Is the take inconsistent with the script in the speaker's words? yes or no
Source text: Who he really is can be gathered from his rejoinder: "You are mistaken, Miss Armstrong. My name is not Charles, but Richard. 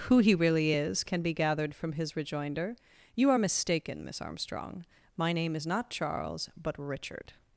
no